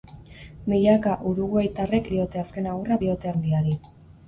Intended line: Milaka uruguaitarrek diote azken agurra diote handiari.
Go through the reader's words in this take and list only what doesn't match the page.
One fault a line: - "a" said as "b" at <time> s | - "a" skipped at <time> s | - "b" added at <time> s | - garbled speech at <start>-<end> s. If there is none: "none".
none